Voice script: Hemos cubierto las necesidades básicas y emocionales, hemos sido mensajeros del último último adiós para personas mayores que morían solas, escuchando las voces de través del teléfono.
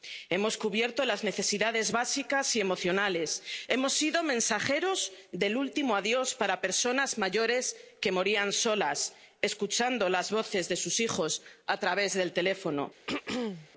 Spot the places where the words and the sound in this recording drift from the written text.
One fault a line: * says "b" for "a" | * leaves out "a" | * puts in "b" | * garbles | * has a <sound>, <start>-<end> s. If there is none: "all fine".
* leaves out "último"
* puts in "sus hijos a"
* has a throat clearing, 13.1-13.7 s